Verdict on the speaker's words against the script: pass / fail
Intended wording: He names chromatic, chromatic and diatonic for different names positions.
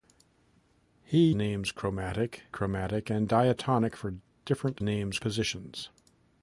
pass